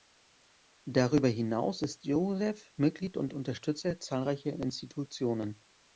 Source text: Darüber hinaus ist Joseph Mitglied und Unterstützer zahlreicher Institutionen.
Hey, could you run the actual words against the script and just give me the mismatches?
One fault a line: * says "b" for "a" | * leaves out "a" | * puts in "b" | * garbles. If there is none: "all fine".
all fine